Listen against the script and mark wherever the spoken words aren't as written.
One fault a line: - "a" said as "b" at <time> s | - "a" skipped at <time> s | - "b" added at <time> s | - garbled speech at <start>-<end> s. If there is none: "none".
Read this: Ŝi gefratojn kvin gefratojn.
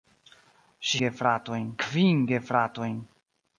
none